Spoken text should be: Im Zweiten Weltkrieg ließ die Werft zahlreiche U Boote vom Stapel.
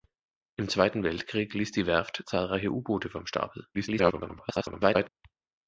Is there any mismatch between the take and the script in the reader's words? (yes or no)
yes